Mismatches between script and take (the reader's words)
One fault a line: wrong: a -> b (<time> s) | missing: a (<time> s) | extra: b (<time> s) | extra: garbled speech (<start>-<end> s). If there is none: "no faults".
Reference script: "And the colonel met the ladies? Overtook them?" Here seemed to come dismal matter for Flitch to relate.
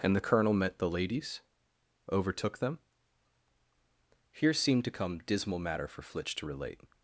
no faults